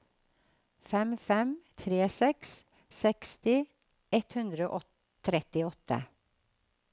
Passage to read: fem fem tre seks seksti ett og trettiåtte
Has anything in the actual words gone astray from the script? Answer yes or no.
yes